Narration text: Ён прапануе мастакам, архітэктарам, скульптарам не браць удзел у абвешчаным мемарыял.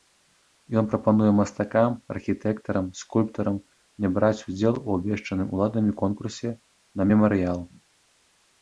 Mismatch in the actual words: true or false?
true